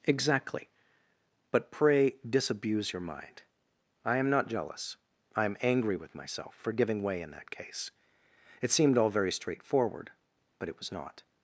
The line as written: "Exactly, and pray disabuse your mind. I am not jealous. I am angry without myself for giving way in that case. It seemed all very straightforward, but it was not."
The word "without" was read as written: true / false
false